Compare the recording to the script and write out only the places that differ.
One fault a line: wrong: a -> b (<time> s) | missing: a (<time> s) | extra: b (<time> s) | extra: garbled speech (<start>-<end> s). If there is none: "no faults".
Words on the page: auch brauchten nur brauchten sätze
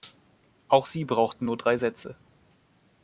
extra: sie (0.9 s)
wrong: brauchten -> drei (1.6 s)